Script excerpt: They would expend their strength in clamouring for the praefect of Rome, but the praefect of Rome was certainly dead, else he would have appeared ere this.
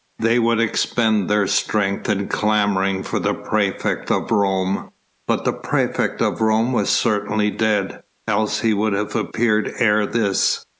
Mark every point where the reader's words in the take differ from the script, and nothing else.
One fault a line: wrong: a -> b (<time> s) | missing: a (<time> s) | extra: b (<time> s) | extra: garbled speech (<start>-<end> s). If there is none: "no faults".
no faults